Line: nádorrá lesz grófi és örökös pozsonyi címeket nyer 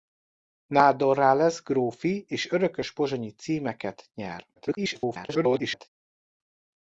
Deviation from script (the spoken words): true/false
true